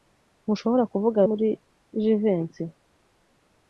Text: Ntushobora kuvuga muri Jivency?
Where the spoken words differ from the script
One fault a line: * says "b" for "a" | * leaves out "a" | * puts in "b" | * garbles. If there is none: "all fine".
all fine